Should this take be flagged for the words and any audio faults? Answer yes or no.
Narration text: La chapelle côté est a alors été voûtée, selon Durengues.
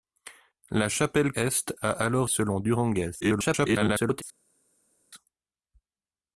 yes